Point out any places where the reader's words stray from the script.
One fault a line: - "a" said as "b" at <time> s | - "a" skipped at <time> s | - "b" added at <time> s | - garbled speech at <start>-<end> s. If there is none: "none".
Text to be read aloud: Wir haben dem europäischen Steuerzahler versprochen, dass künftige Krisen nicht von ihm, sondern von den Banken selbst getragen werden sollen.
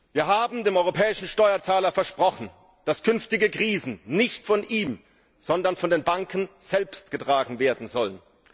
none